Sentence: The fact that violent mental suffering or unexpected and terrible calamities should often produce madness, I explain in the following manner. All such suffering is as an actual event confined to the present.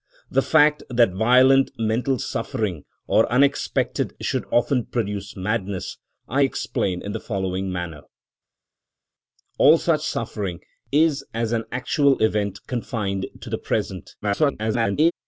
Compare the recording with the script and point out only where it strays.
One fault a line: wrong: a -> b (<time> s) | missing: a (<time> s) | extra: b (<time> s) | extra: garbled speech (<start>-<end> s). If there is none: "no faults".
missing: and terrible calamities (4.2 s)
extra: garbled speech (14.2-15.1 s)